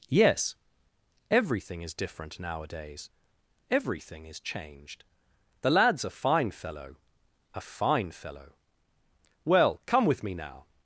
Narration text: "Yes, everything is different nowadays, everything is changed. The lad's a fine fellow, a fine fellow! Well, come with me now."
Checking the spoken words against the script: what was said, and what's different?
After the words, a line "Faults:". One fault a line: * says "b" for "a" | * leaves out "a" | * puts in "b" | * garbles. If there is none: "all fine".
"Yes, everything is different nowadays, everything is changed. The lad's a fine fellow, a fine fellow! Well, come with me now."
Faults:
all fine